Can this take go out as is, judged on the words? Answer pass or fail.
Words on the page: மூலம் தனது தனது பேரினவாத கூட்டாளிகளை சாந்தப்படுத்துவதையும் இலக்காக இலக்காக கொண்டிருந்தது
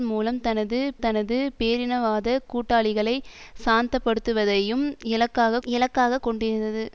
pass